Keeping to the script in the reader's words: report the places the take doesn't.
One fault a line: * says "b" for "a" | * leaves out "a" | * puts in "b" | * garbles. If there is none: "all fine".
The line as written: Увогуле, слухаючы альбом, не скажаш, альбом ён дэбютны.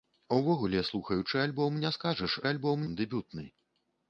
all fine